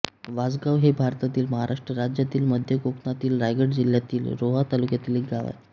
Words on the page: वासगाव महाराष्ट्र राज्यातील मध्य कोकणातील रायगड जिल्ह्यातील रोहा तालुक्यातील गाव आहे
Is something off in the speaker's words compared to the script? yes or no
yes